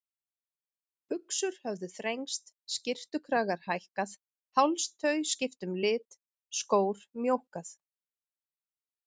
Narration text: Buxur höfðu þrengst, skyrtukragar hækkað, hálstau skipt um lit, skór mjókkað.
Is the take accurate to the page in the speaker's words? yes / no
yes